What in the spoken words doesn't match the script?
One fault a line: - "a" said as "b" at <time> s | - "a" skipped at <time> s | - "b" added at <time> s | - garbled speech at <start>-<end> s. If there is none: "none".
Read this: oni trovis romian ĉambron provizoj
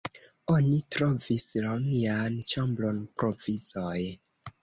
none